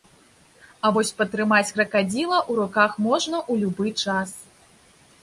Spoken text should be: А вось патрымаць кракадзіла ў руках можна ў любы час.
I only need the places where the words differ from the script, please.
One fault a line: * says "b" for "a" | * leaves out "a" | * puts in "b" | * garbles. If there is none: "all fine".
all fine